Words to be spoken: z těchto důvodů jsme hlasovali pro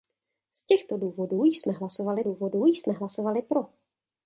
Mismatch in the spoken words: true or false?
true